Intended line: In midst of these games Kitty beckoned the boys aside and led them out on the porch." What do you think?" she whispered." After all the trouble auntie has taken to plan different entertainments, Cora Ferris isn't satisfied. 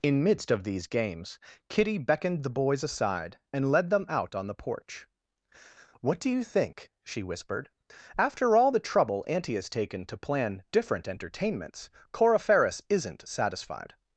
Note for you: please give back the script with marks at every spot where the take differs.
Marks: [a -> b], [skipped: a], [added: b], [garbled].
In midst of these games Kitty beckoned the boys aside and led them out on the porch." What do you think?" she whispered." After all the trouble auntie has taken to plan different entertainments, Cora Ferris isn't satisfied.